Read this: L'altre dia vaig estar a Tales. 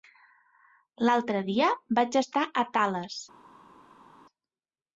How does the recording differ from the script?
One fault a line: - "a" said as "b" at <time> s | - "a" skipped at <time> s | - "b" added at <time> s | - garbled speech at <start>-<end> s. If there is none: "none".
none